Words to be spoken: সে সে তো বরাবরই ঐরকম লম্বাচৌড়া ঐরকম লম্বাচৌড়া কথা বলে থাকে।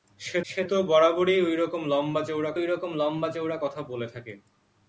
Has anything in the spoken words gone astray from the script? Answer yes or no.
no